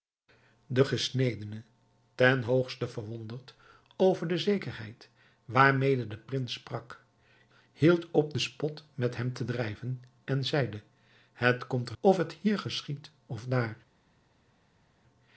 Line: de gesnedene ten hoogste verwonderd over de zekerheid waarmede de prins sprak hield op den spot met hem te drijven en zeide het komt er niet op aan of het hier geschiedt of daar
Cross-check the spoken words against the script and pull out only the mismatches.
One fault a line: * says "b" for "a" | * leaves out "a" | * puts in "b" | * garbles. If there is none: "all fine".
* leaves out "niet op aan"